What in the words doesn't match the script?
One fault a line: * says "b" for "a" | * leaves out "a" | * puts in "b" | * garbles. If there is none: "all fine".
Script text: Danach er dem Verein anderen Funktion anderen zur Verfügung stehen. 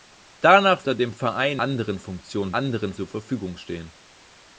all fine